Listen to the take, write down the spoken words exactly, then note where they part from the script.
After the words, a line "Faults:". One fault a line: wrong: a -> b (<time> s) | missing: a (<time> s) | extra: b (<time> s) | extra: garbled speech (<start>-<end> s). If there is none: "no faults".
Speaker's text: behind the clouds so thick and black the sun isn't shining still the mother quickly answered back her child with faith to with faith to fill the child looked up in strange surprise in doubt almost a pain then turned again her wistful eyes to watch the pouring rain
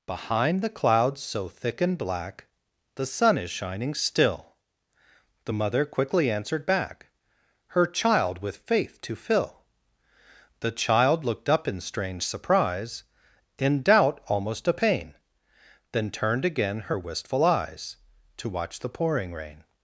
behind the clouds so thick and black the sun is shining still the mother quickly answered back her child with faith to fill the child looked up in strange surprise in doubt almost a pain then turned again her wistful eyes to watch the pouring rain
Faults:
wrong: isn't -> is (3.4 s)
missing: with faith to (9.2 s)